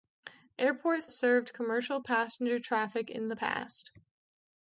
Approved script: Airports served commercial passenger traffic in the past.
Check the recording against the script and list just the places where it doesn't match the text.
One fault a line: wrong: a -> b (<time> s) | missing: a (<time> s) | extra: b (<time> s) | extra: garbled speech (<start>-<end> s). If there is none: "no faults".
no faults